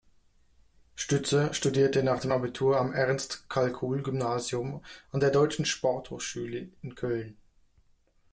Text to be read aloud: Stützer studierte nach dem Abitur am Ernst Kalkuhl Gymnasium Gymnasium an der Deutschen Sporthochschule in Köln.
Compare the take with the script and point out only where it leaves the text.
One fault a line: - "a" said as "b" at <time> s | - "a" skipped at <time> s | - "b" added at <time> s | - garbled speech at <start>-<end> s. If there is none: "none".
- "Gymnasium" skipped at 4.8 s